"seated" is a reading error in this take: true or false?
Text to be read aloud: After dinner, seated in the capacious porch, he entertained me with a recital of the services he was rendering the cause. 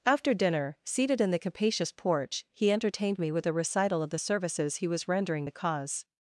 false